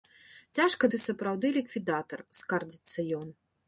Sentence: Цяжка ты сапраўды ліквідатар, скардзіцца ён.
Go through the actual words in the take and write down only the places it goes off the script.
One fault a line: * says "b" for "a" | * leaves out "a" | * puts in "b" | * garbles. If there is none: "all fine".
all fine